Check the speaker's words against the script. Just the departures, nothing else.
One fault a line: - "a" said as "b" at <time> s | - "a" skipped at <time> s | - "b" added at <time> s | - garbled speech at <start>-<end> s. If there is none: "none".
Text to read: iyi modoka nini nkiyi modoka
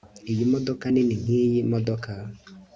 none